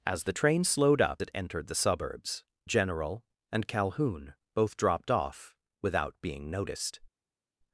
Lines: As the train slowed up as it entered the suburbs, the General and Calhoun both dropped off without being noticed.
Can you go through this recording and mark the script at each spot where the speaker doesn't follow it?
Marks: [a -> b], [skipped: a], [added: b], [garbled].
As the train slowed up [skipped: as] it entered the suburbs, [skipped: the] General and Calhoun both dropped off without being noticed.